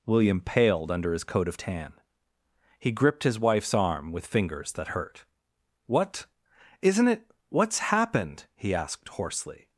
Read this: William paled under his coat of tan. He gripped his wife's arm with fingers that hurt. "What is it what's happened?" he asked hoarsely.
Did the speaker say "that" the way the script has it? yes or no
yes